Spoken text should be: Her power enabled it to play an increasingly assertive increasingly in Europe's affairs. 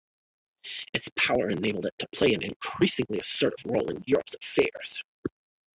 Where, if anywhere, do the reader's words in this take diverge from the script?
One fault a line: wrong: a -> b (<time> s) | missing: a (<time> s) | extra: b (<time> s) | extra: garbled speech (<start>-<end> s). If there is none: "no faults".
wrong: Her -> Its (0.9 s)
wrong: increasingly -> role (3.7 s)